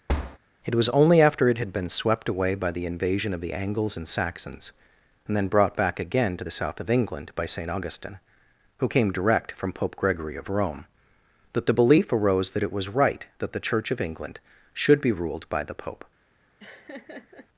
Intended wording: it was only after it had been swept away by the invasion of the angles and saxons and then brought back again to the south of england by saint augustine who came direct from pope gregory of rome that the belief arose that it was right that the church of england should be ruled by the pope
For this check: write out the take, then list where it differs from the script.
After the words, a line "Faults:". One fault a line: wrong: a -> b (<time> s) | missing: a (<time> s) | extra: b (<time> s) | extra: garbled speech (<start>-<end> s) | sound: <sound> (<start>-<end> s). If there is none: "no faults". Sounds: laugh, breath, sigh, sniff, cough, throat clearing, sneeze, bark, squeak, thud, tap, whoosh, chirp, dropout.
it was only after it had been swept away by the invasion of the angles and saxons and then brought back again to the south of england by saint augustine who came direct from pope gregory of rome that the belief arose that it was right that the church of england should be ruled by the pope
Faults:
sound: thud (0.1-0.4 s)
sound: laugh (16.6-17.5 s)